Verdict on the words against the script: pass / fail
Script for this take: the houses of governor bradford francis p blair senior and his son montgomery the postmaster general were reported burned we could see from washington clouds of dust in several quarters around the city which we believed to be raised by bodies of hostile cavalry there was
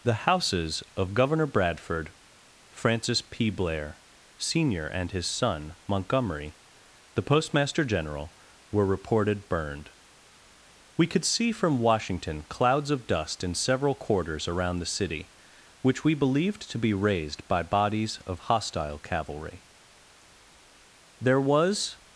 pass